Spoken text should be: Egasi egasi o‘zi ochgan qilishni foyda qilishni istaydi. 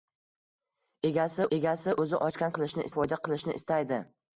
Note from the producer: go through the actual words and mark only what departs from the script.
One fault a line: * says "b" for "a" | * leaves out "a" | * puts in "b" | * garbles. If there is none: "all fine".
all fine